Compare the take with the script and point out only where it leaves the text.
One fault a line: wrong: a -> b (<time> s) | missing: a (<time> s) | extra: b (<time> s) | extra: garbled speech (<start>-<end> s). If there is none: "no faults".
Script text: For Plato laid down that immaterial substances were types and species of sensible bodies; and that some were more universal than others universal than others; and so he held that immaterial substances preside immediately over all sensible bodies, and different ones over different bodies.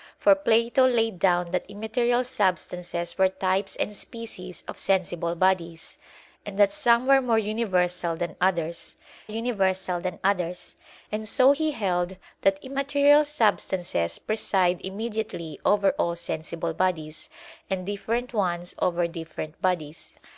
no faults